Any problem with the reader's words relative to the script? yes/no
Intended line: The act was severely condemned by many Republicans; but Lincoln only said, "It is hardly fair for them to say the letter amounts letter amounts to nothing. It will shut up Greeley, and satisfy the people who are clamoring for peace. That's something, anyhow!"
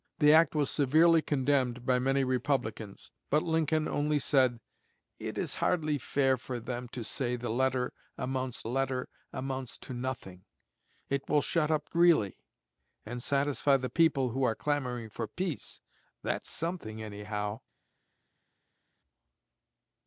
no